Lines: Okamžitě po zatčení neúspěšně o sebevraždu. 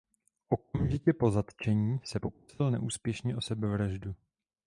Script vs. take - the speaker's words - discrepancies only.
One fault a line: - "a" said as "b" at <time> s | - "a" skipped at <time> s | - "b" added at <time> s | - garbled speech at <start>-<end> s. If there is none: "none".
- "se pokusil" added at 2.0 s